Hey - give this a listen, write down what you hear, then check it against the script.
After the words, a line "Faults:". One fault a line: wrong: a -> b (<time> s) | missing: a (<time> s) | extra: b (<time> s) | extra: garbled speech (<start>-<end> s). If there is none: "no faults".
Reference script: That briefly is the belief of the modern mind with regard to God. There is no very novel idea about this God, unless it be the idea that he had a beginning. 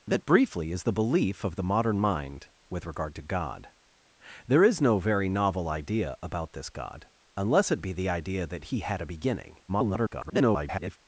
That briefly is the belief of the modern mind with regard to God. There is no very novel idea about this God, unless it be the idea that he had a beginning. [garbled]
Faults:
extra: garbled speech (9.7-11.0 s)